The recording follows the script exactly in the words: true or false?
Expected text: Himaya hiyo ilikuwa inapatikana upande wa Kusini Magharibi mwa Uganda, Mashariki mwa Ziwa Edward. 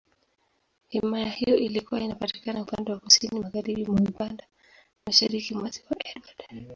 true